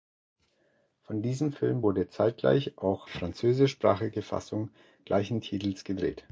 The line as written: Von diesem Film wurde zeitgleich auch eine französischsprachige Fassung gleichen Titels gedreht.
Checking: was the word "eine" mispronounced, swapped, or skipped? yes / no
yes